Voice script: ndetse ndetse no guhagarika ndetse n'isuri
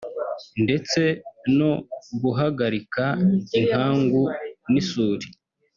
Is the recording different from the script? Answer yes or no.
yes